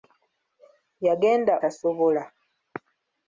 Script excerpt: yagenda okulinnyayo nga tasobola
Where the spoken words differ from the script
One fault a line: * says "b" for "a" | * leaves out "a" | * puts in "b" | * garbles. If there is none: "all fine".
* leaves out "okulinnyayo nga"